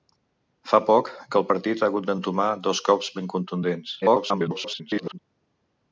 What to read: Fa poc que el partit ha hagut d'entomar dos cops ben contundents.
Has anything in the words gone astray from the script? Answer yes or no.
yes